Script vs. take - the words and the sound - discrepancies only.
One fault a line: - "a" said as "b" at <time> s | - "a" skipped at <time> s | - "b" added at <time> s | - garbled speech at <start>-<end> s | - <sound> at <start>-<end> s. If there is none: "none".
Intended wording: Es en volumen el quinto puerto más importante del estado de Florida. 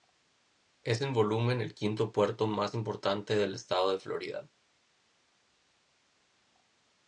none